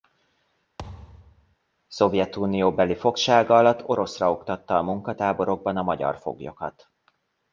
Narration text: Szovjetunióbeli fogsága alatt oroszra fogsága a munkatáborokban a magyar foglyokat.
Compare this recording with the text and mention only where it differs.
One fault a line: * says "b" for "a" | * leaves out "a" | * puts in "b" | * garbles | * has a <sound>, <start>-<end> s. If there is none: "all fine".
* has a thud, 0.8-1.6 s
* says "oktatta" for "fogsága"